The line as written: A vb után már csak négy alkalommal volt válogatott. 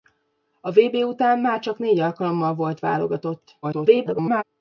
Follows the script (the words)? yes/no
no